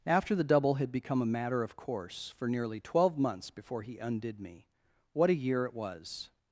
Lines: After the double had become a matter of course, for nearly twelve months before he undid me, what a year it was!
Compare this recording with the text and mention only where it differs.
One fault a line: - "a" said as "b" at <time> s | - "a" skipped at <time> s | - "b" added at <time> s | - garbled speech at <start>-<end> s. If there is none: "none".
none